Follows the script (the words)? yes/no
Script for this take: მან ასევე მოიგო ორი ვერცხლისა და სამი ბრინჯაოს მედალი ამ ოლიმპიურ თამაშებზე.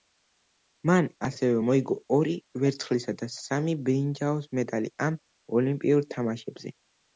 yes